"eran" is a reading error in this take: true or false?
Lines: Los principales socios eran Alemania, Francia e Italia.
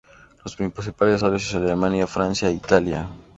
true